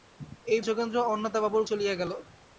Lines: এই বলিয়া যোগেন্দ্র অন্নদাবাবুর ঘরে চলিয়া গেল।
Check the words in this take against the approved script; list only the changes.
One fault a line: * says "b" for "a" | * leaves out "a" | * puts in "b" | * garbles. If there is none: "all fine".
* leaves out "বলিয়া"
* leaves out "ঘরে"